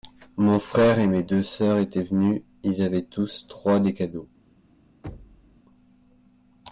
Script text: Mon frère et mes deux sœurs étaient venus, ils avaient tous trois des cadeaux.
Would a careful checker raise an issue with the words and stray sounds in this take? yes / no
yes